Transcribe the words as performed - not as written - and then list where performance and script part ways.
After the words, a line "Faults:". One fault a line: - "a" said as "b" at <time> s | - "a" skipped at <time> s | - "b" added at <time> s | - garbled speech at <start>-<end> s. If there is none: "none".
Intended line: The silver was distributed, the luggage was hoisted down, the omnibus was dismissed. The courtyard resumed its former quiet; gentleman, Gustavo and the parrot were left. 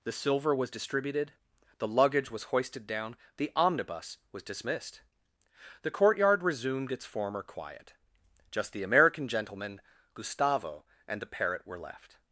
The silver was distributed, the luggage was hoisted down, the omnibus was dismissed. The courtyard resumed its former quiet; just the American gentleman, Gustavo and the parrot were left.
Faults:
- "just the American" added at 8.5 s